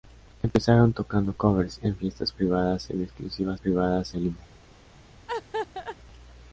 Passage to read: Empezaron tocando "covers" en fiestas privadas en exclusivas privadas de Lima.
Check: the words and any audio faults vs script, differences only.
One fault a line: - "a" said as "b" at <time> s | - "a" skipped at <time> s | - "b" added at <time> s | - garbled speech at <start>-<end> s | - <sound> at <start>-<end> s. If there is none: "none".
- laugh at 5.3-6.0 s